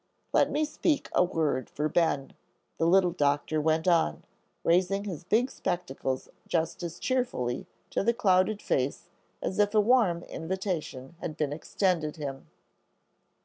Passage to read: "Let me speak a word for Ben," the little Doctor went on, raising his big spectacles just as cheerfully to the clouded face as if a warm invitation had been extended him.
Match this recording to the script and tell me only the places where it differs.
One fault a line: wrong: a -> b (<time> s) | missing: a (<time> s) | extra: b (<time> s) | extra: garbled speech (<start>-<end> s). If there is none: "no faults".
no faults